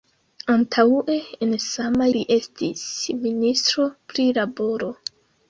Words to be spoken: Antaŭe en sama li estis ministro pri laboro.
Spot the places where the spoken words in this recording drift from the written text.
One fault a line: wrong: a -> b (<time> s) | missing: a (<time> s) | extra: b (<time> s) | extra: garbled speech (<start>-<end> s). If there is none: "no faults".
no faults